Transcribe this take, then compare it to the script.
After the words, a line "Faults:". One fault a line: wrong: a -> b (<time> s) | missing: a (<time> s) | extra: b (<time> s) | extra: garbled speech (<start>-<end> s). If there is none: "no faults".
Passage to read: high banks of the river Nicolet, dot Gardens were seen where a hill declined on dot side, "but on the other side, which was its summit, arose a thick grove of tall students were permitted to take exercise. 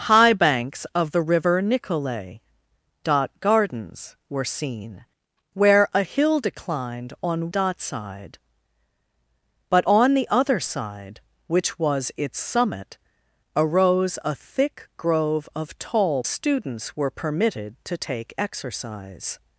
high banks of the river Nicolet, dot Gardens were seen where a hill declined on dot side, "but on the other side, which was its summit, arose a thick grove of tall students were permitted to take exercise.
Faults:
no faults